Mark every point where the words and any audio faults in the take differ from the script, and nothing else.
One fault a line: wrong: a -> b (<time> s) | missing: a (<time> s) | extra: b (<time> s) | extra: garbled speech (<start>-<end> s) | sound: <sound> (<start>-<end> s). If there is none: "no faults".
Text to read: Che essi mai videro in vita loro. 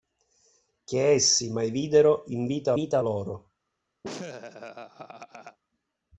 extra: vita (2.7 s)
sound: laugh (4.0-5.6 s)